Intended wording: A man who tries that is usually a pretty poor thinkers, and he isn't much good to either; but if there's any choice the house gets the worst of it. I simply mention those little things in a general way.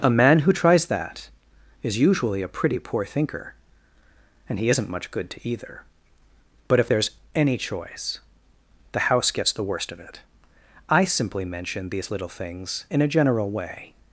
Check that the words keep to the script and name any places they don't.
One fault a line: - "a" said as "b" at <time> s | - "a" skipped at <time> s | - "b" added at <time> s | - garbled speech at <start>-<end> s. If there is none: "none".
- "thinkers" said as "thinker" at 3.0 s
- "those" said as "these" at 11.9 s